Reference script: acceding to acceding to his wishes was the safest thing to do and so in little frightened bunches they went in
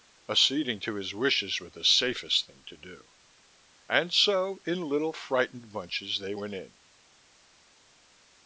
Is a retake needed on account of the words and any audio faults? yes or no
yes